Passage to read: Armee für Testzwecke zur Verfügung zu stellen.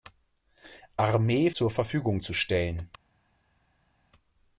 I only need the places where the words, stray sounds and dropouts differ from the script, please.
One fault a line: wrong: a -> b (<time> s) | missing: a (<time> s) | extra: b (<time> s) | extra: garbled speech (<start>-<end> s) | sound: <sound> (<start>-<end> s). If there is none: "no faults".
missing: für Testzwecke (1.5 s)